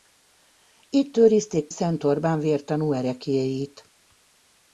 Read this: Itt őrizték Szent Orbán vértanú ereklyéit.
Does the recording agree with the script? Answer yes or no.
yes